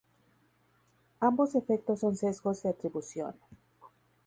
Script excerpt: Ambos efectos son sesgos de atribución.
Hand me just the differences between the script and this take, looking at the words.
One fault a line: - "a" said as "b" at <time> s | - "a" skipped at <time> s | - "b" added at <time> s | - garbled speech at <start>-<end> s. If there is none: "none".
none